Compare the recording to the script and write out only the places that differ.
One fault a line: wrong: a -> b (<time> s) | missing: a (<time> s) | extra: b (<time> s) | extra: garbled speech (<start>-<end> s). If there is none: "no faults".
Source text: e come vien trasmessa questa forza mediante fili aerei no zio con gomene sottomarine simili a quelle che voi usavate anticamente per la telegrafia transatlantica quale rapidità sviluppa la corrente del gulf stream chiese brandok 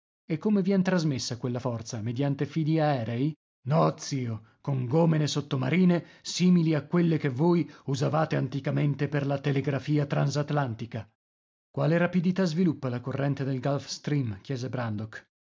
wrong: questa -> quella (1.4 s)